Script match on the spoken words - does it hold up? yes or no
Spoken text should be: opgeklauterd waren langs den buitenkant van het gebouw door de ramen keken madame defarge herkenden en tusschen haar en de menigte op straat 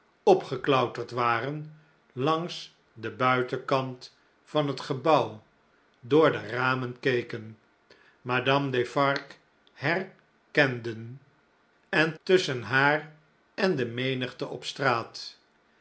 yes